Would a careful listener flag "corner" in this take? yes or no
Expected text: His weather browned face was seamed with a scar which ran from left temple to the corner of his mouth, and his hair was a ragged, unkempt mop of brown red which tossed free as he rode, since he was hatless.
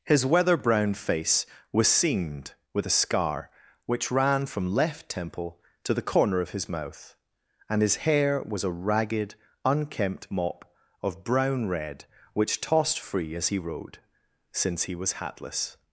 no